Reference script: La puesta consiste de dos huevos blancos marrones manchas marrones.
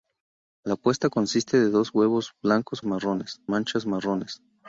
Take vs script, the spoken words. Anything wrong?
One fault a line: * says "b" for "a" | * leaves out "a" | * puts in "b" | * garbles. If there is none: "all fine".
all fine